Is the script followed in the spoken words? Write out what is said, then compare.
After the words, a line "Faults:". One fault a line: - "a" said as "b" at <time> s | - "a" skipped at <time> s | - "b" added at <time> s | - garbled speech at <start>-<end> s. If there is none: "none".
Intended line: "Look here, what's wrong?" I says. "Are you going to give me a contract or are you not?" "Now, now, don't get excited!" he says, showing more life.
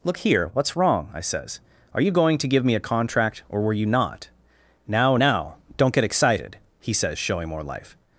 "Look here, what's wrong?" I says. "Are you going to give me a contract or were you not?" "Now, now, don't get excited!" he says, showing more life.
Faults:
- "are" said as "were" at 3.6 s